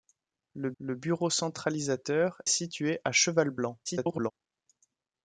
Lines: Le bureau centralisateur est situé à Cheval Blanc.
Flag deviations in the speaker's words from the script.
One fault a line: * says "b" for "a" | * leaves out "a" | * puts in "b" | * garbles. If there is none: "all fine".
* puts in "le"
* leaves out "est"
* garbles